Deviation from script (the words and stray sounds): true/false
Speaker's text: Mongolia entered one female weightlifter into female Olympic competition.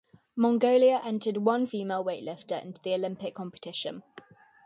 true